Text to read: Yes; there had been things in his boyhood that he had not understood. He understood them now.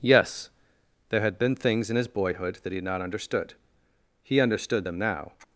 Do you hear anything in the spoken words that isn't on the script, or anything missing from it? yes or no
no